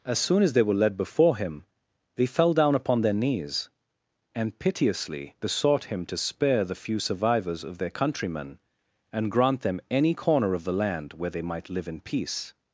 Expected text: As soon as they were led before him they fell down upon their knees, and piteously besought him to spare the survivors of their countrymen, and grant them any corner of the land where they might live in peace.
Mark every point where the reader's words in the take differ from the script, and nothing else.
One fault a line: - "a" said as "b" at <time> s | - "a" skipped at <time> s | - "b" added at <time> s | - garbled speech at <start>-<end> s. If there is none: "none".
- "few" added at 6.8 s